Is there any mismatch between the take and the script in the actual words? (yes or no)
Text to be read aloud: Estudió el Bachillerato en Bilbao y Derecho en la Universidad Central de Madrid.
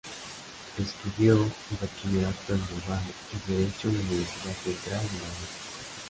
no